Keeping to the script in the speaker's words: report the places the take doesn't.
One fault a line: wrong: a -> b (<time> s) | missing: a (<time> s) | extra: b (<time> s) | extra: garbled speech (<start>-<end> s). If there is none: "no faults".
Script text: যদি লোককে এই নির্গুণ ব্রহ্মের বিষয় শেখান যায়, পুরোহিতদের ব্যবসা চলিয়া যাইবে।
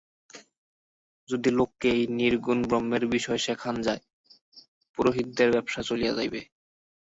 no faults